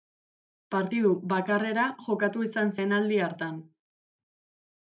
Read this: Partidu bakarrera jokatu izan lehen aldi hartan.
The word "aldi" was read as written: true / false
true